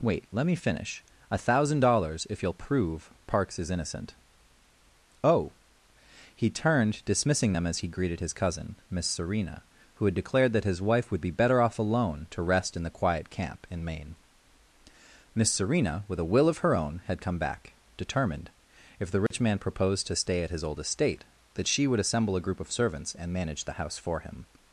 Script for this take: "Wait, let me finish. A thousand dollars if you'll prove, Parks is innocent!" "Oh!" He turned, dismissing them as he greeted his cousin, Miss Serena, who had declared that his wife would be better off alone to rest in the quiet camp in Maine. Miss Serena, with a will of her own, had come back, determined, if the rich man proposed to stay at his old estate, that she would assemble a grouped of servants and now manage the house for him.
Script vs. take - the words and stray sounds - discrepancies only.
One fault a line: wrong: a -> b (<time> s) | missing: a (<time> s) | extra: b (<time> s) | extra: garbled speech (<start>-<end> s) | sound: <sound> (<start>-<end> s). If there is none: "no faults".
sound: dropout (19.3-19.3 s)
wrong: grouped -> group (22.4 s)
missing: now (23.3 s)